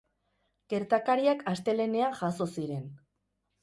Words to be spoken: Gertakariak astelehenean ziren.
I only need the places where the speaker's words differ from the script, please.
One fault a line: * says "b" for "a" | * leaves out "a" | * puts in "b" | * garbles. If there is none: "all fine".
* puts in "jazo"